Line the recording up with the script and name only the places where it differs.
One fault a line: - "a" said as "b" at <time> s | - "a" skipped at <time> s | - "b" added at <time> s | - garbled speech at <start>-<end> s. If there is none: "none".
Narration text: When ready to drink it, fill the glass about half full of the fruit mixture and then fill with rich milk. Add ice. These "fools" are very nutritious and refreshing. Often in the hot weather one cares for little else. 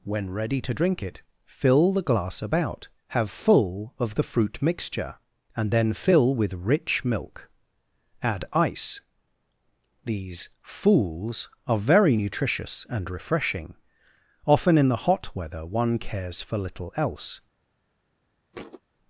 - "half" said as "have" at 3.1 s